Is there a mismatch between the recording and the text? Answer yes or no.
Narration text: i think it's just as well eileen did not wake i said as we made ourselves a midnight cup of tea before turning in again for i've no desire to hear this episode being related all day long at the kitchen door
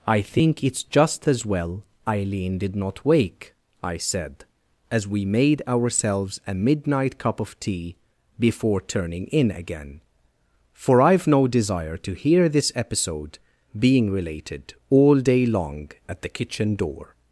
no